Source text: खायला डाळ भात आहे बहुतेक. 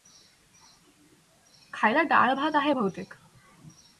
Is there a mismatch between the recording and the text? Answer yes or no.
no